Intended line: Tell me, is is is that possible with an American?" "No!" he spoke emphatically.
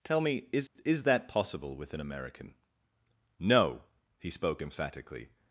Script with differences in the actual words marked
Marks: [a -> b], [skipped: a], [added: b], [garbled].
Tell me, is is [skipped: is] that possible with an American?" "No!" he spoke emphatically.